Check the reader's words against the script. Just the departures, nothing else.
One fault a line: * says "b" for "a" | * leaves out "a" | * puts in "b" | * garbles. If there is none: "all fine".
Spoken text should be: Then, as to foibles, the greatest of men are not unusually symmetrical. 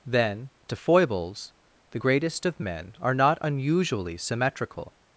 * leaves out "as"